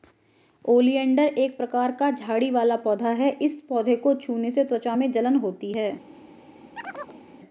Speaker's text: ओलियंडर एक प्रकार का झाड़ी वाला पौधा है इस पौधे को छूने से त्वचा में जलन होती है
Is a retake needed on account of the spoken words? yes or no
no